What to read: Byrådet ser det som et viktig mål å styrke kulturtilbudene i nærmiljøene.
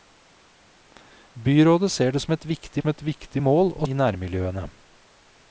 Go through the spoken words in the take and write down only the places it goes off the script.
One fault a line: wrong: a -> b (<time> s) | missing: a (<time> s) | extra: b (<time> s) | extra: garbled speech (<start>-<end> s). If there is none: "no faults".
extra: som et viktig (2.8 s)
missing: styrke kulturtilbudene (3.9 s)